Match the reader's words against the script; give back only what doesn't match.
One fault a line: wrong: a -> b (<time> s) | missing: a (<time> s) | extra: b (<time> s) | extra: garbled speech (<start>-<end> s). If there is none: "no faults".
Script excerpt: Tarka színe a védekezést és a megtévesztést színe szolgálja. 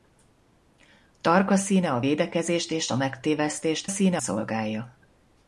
no faults